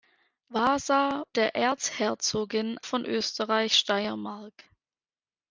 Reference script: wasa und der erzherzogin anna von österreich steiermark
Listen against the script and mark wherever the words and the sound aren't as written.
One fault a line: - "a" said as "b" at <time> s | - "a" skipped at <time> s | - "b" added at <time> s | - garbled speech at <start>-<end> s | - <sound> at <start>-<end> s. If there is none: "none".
- "und" skipped at 1.3 s
- "anna" skipped at 2.8 s